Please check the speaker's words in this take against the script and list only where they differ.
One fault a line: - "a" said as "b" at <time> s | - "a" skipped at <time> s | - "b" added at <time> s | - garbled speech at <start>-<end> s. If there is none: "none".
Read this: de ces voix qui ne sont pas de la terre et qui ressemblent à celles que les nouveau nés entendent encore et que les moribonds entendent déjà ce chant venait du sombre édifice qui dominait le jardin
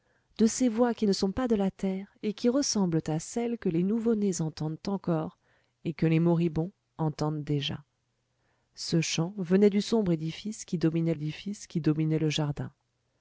- "édifice qui dominait" added at 11.1 s